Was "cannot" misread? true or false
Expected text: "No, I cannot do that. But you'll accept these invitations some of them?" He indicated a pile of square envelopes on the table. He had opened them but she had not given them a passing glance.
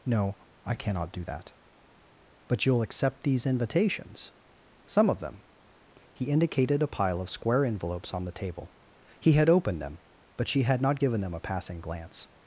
false